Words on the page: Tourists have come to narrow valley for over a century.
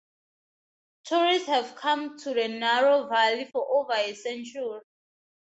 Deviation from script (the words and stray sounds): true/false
true